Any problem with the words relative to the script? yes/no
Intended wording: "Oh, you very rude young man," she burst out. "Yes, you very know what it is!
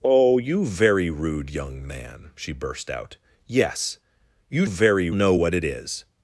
no